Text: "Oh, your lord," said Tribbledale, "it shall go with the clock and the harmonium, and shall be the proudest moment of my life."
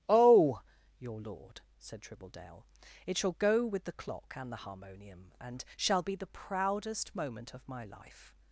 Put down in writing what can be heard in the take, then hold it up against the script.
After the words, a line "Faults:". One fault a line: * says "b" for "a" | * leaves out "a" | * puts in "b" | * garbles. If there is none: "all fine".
"Oh, your lord," said Tribbledale, "it shall go with the clock and the harmonium, and shall be the proudest moment of my life."
Faults:
all fine